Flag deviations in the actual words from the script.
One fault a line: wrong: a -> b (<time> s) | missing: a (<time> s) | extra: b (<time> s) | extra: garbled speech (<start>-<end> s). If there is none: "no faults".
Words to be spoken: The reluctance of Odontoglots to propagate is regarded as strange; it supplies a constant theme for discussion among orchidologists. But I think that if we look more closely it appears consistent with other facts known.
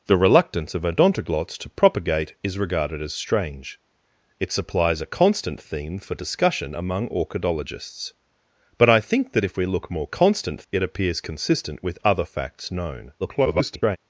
wrong: closely -> constant (10.1 s)
extra: garbled speech (13.2-14.0 s)